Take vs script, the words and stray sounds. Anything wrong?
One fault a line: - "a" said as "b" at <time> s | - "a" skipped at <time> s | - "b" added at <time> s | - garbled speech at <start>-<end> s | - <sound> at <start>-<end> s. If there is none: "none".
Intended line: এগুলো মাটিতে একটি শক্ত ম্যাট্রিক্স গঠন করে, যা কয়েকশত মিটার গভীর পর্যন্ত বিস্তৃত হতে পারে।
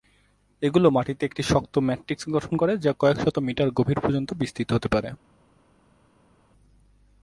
none